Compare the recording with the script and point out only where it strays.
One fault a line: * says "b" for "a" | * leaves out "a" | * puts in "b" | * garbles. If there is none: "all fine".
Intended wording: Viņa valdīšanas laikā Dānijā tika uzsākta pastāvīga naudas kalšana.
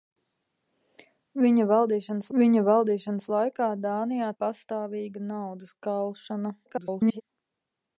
* puts in "viņa valdīšanas"
* leaves out "tika uzsākta"
* garbles